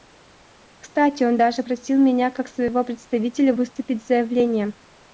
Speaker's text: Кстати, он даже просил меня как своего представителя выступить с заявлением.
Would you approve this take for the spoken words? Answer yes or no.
yes